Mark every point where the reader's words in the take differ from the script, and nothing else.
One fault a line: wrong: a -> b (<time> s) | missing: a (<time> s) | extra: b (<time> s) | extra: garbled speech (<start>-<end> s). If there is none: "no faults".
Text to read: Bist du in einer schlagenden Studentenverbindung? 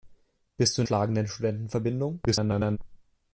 missing: einer (0.9 s)
extra: garbled speech (2.3-2.8 s)